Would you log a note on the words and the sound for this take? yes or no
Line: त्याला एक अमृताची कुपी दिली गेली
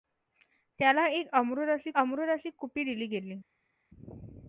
yes